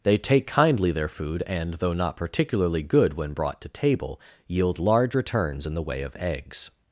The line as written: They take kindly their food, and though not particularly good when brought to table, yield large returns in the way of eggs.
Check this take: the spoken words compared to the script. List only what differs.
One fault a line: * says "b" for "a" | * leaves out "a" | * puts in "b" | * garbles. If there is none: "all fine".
all fine